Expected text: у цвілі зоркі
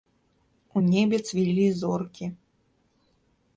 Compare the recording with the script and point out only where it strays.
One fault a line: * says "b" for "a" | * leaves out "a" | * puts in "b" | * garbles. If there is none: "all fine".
* puts in "небе"